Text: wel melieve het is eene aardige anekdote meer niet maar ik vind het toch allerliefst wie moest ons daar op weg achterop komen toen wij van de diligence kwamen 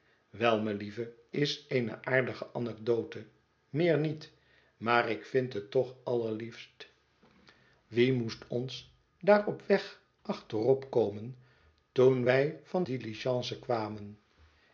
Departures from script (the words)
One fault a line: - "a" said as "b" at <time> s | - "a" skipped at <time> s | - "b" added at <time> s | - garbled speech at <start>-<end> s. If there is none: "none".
- "het" skipped at 1.1 s
- "de" skipped at 12.8 s